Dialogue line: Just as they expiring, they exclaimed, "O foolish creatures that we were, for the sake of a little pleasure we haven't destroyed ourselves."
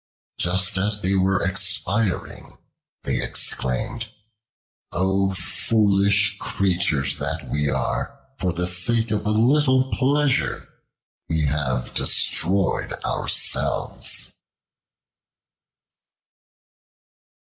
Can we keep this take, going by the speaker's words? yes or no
no